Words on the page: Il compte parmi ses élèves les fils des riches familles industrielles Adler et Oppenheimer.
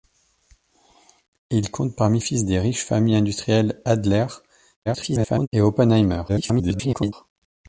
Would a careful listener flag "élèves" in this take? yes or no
yes